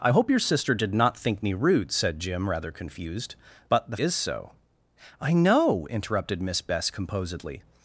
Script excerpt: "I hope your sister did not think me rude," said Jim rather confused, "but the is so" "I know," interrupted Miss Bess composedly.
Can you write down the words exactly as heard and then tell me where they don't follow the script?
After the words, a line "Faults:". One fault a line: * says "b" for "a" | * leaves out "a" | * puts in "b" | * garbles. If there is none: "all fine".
"I hope your sister did not think me rude," said Jim rather confused, "but the is so" "I know," interrupted Miss Bess composedly.
Faults:
all fine